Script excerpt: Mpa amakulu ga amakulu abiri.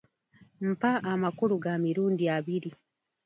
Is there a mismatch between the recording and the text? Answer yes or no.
yes